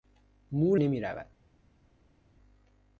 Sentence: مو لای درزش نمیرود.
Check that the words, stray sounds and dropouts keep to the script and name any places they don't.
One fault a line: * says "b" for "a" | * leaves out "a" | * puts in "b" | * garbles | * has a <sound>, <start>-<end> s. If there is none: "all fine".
* leaves out "لای درزش"